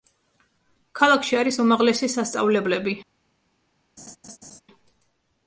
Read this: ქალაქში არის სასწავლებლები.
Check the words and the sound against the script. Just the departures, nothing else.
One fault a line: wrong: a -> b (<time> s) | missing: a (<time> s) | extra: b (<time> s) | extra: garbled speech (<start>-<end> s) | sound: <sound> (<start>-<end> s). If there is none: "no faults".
extra: უმაღლესი (1.6 s)
sound: laugh (4.0-4.6 s)